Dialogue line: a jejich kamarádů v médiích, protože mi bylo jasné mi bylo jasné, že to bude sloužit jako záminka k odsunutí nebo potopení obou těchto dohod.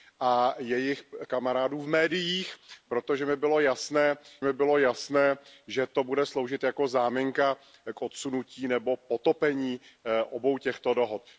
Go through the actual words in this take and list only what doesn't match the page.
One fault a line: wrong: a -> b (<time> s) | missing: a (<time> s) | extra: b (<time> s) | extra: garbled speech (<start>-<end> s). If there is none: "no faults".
no faults